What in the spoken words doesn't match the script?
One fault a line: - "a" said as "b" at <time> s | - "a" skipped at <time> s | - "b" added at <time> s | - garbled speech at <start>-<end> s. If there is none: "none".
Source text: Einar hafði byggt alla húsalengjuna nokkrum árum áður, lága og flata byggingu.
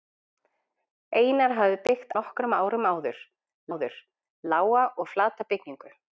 - "alla húsalengjuna" skipped at 2.1 s
- "áður" added at 3.7 s